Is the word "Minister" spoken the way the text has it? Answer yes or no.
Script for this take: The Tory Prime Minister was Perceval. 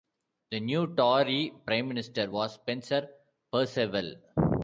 yes